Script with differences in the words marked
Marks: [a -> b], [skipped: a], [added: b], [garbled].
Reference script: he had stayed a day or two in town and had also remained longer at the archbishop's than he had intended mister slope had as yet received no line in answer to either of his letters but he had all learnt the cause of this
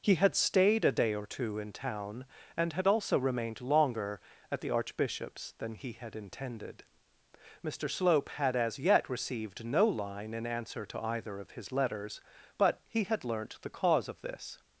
he had stayed a day or two in town and had also remained longer at the archbishop's than he had intended mister slope had as yet received no line in answer to either of his letters but he had [skipped: all] learnt the cause of this